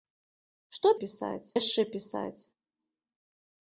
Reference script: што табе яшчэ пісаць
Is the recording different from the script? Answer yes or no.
yes